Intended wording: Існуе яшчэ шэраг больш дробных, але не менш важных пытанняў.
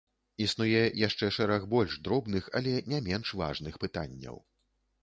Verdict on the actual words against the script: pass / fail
pass